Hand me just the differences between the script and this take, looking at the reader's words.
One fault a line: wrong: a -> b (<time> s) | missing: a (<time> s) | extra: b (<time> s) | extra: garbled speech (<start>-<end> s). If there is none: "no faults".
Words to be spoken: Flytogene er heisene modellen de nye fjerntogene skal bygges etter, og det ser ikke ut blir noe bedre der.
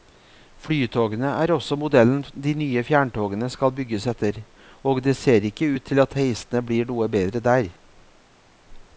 wrong: heisene -> også (1.6 s)
extra: til at heisene (5.9 s)